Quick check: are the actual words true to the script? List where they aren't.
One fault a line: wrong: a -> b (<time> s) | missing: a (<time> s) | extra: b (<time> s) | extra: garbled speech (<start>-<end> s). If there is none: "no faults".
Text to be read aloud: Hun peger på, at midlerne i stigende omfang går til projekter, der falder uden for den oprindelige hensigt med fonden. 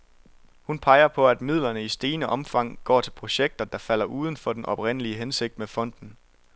no faults